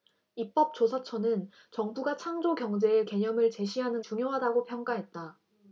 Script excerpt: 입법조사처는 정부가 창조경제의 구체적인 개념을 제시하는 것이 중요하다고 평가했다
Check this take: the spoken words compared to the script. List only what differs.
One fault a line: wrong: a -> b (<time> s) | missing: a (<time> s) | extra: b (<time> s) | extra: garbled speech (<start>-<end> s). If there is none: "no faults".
missing: 구체적인 (3.0 s)
missing: 것이 (4.0 s)